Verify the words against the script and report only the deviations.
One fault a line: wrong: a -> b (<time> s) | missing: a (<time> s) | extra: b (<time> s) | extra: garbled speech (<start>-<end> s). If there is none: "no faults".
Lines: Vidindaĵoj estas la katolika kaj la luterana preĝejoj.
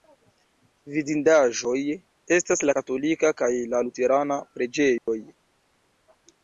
no faults